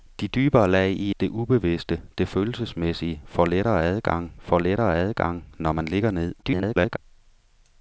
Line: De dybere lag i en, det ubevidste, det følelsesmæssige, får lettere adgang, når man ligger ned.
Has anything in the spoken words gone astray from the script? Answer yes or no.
yes